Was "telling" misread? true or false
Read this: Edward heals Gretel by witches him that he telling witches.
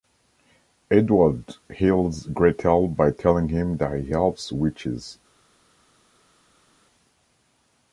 true